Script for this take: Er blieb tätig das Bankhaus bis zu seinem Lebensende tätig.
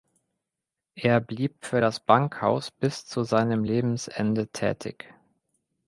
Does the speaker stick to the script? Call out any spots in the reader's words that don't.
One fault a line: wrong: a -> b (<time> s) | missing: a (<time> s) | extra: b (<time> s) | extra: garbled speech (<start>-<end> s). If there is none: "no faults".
wrong: tätig -> für (1.6 s)